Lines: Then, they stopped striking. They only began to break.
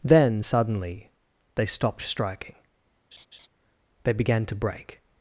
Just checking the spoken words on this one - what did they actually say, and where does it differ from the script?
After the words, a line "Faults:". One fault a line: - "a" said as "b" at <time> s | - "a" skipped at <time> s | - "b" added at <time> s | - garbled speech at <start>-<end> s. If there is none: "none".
Then, suddenly, they stopped striking. They began to break.
Faults:
- "suddenly" added at 0.4 s
- "only" skipped at 4.1 s